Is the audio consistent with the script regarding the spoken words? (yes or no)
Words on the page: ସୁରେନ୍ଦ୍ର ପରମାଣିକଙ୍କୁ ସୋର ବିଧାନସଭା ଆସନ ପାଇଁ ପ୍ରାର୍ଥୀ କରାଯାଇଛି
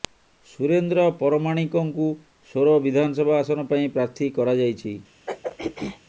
yes